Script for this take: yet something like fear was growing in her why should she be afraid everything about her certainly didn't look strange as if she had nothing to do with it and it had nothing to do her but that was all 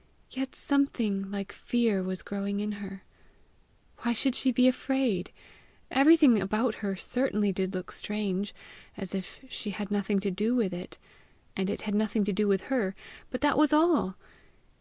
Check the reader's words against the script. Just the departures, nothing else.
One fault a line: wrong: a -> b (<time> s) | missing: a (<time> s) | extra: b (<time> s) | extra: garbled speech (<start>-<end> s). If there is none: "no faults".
wrong: didn't -> did (7.5 s)
extra: with (12.5 s)